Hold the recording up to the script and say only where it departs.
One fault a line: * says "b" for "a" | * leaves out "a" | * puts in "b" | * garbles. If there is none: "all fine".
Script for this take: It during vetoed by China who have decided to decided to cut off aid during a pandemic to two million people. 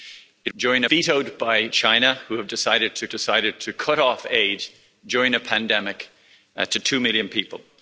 all fine